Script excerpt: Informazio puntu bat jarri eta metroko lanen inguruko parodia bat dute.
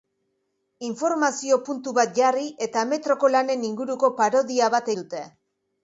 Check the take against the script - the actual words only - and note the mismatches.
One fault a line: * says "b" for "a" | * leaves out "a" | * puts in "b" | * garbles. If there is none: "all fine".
all fine